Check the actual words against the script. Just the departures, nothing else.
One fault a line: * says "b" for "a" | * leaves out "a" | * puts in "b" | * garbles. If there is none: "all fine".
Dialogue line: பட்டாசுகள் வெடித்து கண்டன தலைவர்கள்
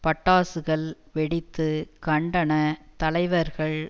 all fine